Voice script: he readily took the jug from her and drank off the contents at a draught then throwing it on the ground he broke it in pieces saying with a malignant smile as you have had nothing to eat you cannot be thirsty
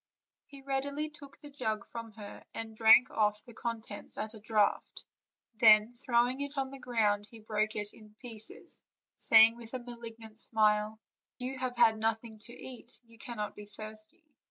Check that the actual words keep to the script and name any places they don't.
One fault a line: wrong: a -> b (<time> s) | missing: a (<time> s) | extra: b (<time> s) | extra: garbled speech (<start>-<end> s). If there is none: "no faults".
missing: as (11.0 s)